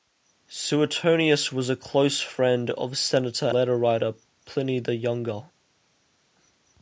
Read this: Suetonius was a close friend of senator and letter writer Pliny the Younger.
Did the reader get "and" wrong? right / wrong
wrong